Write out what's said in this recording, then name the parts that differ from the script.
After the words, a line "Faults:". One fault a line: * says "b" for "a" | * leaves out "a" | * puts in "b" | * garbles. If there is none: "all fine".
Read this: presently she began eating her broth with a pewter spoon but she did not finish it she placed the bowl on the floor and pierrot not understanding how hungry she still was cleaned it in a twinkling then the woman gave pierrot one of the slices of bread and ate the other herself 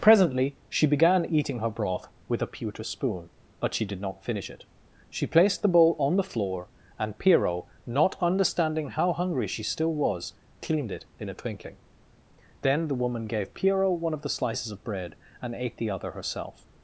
presently she began eating her broth with a pewter spoon but she did not finish it she placed the bowl on the floor and pierrot not understanding how hungry she still was cleaned it in a twinkling then the woman gave pierrot one of the slices of bread and ate the other herself
Faults:
all fine